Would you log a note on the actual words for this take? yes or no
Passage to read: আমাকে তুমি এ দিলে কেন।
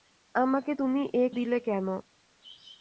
no